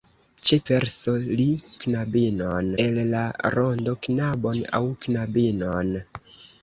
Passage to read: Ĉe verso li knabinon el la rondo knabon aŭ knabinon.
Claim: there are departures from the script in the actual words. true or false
false